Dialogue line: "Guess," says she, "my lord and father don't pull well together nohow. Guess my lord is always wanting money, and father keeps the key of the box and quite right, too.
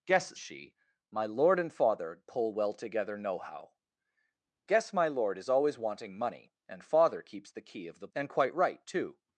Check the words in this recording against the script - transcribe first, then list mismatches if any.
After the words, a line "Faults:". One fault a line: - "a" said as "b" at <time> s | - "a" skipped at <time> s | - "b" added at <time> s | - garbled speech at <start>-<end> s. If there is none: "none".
"Guess," she, "my lord and father pull well together nohow. Guess my lord is always wanting money, and father keeps the key of the and quite right, too.
Faults:
- "says" skipped at 0.4 s
- "don't" skipped at 2.2 s
- "box" skipped at 8.1 s